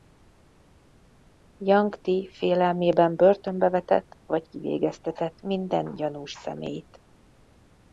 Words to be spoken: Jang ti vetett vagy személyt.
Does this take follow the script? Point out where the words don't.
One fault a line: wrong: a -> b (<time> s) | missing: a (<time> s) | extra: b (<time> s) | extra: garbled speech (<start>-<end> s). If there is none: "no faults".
extra: félelmében börtönbe (2.3 s)
extra: kivégeztetett minden gyanús (4.5 s)